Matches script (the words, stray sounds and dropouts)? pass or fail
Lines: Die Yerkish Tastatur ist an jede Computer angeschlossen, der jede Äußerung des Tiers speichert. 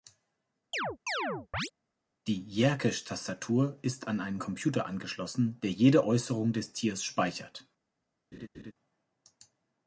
fail